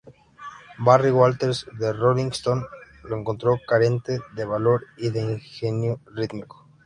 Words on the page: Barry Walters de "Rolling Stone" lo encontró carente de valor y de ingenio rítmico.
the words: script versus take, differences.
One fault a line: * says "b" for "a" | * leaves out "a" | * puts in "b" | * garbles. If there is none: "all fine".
all fine